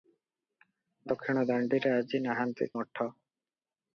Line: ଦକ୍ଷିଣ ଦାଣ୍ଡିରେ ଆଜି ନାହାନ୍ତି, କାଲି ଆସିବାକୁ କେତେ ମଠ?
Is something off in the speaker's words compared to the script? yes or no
yes